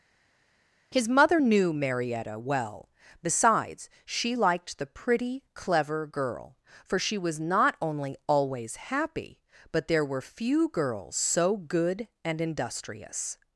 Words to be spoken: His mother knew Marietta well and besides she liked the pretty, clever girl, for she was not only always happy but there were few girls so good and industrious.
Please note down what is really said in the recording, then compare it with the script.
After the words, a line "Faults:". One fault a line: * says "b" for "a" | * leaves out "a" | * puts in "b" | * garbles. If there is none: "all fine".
His mother knew Marietta well besides she liked the pretty, clever girl, for she was not only always happy but there were few girls so good and industrious.
Faults:
* leaves out "and"